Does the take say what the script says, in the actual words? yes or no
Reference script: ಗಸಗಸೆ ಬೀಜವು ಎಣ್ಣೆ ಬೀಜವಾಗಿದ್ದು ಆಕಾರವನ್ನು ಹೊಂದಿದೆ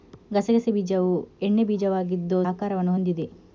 yes